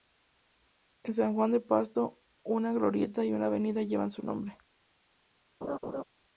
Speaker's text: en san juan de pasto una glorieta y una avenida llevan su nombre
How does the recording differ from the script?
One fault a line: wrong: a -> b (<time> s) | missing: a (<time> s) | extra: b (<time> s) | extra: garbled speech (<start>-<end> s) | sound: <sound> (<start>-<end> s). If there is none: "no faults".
sound: laugh (5.6-6.0 s)